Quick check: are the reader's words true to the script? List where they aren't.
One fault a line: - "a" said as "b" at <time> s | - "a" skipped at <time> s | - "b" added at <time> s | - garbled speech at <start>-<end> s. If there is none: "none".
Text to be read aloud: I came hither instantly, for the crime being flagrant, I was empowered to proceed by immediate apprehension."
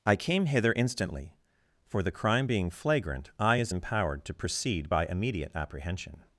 - "was" said as "is" at 3.5 s